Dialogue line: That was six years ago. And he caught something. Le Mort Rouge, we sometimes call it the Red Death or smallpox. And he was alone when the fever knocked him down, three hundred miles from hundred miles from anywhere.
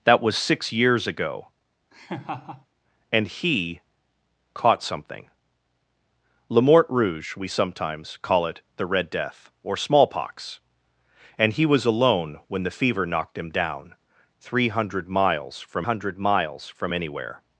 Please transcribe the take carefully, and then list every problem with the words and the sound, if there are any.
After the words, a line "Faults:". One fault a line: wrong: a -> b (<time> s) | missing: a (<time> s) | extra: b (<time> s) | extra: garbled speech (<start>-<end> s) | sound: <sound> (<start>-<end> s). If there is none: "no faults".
That was six years ago. And he caught something. Le Mort Rouge, we sometimes call it the Red Death or smallpox. And he was alone when the fever knocked him down, three hundred miles from hundred miles from anywhere.
Faults:
sound: laugh (1.9-2.7 s)